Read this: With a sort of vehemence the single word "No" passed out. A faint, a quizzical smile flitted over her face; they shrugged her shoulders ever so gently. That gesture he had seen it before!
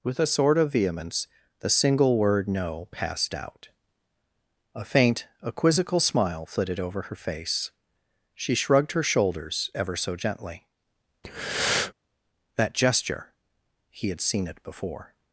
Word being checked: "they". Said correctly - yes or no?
no